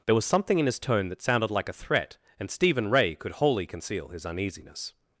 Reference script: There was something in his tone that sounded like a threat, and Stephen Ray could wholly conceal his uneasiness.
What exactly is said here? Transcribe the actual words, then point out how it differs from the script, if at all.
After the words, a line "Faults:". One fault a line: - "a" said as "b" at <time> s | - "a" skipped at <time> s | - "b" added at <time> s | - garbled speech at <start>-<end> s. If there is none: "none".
There was something in his tone that sounded like a threat, and Stephen Ray could wholly conceal his uneasiness.
Faults:
none